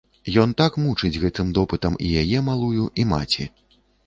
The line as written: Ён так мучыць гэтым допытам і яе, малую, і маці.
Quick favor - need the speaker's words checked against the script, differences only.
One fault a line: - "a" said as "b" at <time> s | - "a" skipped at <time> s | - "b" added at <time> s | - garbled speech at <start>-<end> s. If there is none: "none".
none